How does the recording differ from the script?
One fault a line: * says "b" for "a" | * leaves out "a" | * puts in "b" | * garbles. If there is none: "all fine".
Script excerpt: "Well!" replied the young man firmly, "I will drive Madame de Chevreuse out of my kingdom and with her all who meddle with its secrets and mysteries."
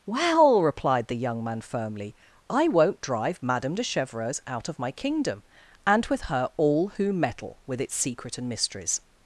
* says "won't" for "will"
* says "secret" for "secrets"